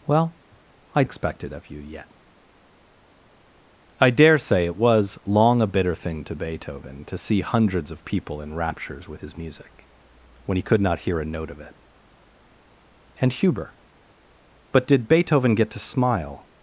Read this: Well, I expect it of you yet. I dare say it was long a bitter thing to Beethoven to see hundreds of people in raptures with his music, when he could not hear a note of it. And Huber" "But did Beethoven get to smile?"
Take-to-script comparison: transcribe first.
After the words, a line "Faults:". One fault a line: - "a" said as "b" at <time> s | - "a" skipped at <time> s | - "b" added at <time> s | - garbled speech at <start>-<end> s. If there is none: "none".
Well, I expect it of you yet. I dare say it was long a bitter thing to Beethoven to see hundreds of people in raptures with his music, when he could not hear a note of it. And Huber" "But did Beethoven get to smile?"
Faults:
none